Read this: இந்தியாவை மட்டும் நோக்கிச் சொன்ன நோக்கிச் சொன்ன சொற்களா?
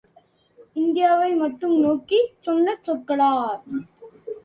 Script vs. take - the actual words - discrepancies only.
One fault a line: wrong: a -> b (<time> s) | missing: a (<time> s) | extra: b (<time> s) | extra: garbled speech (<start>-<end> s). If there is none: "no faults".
missing: நோக்கிச் சொன்ன (2.8 s)